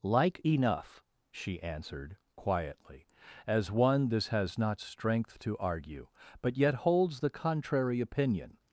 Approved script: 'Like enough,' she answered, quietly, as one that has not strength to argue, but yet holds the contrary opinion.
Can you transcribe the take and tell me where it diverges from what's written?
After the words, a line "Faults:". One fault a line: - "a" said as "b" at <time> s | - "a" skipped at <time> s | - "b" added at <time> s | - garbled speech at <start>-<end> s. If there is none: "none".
'Like enough,' she answered, quietly, as one this has not strength to argue, but yet holds the contrary opinion.
Faults:
- "that" said as "this" at 4.1 s